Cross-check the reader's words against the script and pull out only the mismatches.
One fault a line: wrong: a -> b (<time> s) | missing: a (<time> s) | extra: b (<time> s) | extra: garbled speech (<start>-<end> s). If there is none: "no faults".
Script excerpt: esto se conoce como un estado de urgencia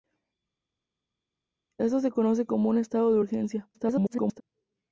extra: garbled speech (3.7-4.4 s)